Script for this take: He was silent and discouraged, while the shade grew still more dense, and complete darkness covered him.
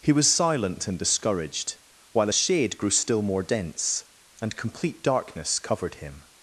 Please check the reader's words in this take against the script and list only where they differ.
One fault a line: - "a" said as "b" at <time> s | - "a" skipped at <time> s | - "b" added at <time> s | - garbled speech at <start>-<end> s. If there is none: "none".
- "the" said as "a" at 2.3 s